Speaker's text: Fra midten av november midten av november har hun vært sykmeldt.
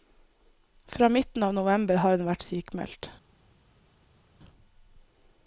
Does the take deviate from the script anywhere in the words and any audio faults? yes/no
yes